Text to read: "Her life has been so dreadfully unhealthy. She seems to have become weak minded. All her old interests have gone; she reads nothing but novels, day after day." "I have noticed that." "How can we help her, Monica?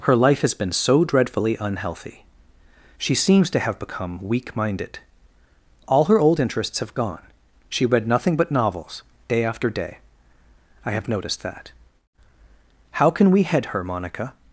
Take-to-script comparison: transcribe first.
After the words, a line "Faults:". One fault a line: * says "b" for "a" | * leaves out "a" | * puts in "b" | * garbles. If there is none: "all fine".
"Her life has been so dreadfully unhealthy. She seems to have become weak minded. All her old interests have gone; she read nothing but novels, day after day." "I have noticed that." "How can we head her, Monica?
Faults:
* says "read" for "reads"
* says "head" for "help"